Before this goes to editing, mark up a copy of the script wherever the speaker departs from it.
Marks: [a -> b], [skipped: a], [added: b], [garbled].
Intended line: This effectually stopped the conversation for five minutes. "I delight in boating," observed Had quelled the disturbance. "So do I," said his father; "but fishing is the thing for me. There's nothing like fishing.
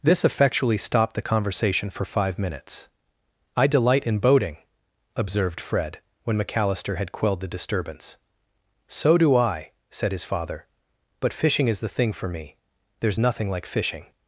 This effectually stopped the conversation for five minutes. "I delight in boating," observed [added: Fred when McAllister] Had quelled the disturbance. "So do I," said his father; "but fishing is the thing for me. There's nothing like fishing.